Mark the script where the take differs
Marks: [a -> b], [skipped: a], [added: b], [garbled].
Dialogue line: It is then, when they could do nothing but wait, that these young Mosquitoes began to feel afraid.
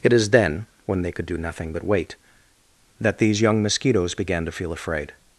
It is then, when they could do nothing but wait, that these young Mosquitoes began to feel afraid.